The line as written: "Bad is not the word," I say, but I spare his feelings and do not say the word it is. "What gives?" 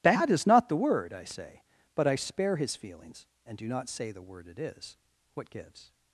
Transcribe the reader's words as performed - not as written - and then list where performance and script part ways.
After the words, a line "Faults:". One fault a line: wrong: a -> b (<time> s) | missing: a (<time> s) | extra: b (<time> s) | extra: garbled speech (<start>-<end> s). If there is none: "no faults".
"Bad is not the word," I say, but I spare his feelings and do not say the word it is. "What gives?"
Faults:
no faults